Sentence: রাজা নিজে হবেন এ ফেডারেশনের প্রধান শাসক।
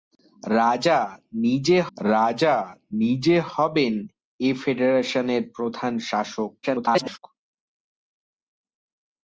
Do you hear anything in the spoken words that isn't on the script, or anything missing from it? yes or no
yes